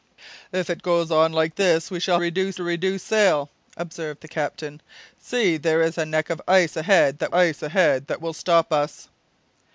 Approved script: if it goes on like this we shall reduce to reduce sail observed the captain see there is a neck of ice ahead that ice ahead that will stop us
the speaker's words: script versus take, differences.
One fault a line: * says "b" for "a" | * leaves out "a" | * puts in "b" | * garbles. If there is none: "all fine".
all fine